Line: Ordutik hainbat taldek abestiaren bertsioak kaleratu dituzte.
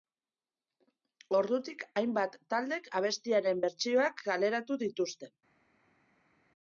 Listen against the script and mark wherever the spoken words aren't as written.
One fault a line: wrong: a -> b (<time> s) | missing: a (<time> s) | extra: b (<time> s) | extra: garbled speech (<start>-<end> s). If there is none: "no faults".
no faults